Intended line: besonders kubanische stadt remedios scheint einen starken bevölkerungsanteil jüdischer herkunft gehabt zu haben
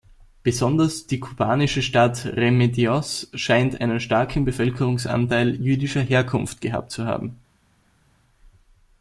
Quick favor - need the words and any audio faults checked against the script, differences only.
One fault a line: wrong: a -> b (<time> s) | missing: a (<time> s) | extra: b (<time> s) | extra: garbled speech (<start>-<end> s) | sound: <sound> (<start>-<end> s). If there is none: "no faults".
extra: die (1.1 s)